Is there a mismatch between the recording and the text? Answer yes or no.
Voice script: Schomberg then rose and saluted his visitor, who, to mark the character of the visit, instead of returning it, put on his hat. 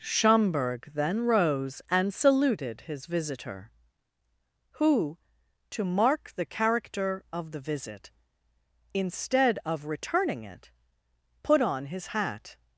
no